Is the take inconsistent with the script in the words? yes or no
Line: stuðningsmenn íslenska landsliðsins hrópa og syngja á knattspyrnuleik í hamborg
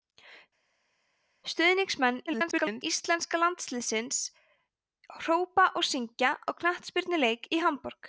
yes